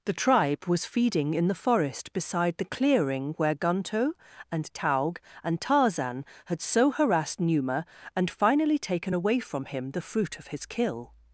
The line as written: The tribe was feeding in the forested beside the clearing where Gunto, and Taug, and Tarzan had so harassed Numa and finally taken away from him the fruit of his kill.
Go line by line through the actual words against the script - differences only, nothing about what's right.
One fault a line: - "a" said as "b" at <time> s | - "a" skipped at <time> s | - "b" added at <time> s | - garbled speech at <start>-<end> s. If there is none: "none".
- "forested" said as "forest" at 1.6 s